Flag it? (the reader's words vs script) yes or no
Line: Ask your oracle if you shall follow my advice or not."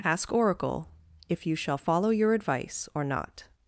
yes